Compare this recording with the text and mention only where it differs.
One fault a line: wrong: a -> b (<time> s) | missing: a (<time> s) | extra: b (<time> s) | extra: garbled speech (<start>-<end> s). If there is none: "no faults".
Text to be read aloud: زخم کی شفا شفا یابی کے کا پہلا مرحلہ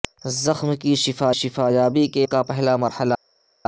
no faults